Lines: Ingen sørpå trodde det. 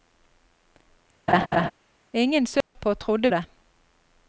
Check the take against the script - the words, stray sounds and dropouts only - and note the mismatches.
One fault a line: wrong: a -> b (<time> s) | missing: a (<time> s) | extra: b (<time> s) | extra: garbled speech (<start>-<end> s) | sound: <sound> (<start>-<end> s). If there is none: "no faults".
sound: laugh (1.3-1.7 s)
sound: dropout (2.6-2.8 s)